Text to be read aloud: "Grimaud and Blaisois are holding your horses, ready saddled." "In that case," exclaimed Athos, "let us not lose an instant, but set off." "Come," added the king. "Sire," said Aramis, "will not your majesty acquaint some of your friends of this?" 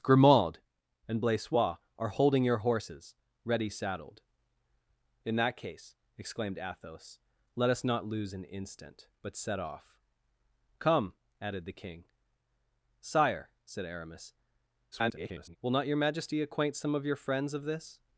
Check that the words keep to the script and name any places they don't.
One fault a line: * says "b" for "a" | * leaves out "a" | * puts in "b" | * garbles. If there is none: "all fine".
* garbles